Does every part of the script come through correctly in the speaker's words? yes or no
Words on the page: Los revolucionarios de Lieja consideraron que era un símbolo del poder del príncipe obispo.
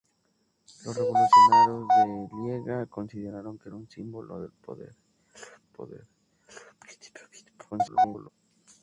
no